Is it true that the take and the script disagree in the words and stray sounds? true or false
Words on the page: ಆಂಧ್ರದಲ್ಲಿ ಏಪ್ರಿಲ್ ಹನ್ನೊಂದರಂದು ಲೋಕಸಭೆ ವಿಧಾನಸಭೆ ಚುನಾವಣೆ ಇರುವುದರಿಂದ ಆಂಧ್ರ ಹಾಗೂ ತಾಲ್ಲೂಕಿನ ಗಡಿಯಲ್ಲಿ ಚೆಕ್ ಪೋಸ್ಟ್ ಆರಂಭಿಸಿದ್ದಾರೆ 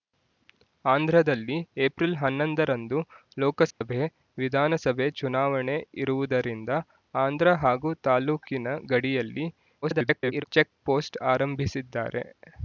true